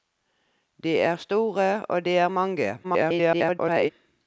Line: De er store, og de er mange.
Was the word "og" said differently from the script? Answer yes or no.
no